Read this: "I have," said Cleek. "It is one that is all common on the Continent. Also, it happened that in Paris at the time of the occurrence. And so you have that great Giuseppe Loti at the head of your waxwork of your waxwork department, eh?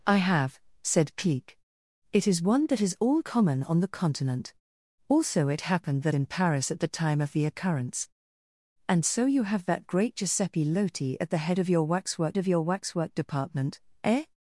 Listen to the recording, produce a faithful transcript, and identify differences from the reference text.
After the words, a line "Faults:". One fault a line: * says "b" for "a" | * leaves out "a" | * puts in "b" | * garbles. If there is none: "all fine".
"I have," said Cleek. "It is one that is all common on the Continent. Also, it happened that in Paris at the time of the occurrence. And so you have that great Giuseppe Loti at the head of your waxwork of your waxwork department, eh?
Faults:
all fine